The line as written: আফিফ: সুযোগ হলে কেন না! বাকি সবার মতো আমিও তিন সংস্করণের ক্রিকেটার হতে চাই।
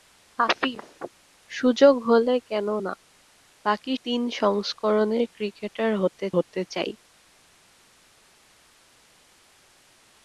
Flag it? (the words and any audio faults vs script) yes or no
yes